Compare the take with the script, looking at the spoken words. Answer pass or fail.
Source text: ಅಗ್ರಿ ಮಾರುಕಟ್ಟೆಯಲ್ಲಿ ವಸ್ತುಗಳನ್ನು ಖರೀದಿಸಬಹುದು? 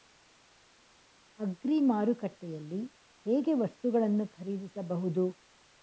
fail